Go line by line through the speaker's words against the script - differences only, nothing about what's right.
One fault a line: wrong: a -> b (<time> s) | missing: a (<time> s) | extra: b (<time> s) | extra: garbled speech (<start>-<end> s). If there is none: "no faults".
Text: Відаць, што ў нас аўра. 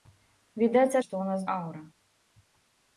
no faults